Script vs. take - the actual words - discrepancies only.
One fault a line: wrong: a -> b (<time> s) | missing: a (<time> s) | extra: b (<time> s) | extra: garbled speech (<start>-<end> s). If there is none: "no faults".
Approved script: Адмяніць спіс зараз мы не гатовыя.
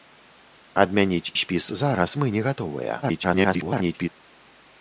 extra: garbled speech (3.0-4.1 s)